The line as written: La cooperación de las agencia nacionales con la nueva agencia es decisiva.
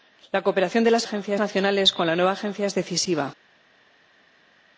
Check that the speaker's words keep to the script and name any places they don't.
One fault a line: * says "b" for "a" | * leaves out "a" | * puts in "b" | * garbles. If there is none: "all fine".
all fine